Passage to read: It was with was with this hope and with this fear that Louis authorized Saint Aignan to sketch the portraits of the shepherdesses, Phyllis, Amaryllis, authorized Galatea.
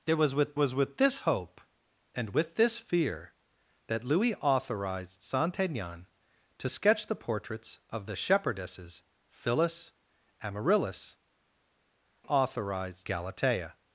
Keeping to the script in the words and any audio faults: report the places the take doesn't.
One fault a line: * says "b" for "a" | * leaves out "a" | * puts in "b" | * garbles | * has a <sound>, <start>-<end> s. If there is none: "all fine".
all fine